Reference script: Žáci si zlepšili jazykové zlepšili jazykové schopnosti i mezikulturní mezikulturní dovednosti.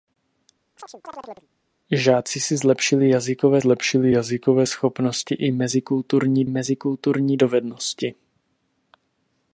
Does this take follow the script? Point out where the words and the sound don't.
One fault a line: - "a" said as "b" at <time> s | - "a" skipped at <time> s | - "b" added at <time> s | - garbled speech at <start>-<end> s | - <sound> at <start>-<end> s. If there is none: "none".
- chirp at 0.8-1.5 s